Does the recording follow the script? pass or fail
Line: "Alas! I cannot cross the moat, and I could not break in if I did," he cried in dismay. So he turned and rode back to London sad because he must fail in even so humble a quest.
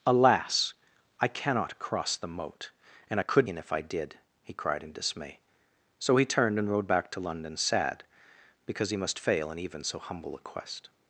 fail